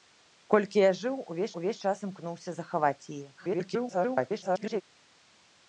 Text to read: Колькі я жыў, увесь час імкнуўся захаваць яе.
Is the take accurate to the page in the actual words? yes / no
no